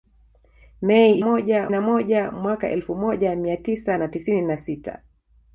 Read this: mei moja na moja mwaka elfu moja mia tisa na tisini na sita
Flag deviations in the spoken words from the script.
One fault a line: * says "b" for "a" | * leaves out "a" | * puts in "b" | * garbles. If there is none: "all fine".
all fine